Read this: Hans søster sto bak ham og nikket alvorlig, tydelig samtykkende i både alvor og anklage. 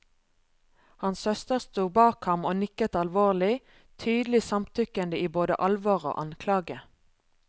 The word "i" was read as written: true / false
true